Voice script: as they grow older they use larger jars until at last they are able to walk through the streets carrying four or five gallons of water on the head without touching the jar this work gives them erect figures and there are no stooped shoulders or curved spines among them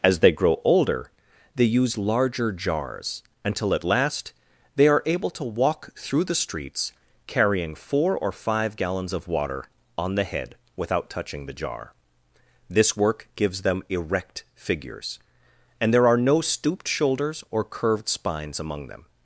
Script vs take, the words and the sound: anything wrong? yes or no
no